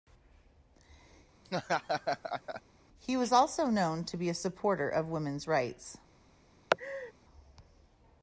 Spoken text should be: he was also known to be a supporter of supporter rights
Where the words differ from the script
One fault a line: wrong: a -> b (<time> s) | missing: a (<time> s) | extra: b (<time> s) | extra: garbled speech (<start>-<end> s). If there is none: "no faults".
wrong: supporter -> women's (5.1 s)